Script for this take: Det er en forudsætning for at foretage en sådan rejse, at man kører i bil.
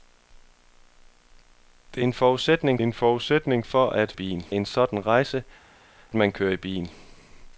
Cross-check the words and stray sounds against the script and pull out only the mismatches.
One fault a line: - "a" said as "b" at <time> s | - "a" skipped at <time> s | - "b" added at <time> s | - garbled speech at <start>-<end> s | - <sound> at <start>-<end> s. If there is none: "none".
- "en forudsætning" added at 2.8 s
- "foretage" said as "bil" at 4.1 s
- "at" skipped at 5.4 s